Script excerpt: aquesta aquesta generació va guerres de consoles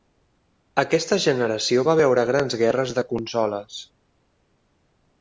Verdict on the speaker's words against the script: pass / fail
fail